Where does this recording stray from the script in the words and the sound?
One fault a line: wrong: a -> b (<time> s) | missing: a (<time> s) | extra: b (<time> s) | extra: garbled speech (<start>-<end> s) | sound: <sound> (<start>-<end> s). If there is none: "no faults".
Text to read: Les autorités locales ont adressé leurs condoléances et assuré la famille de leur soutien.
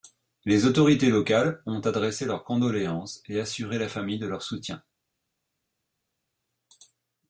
no faults